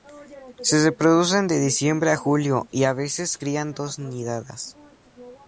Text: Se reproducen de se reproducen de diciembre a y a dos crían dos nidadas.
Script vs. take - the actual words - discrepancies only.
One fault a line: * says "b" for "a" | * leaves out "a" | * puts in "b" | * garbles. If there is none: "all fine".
* leaves out "se reproducen de"
* puts in "julio"
* says "veces" for "dos"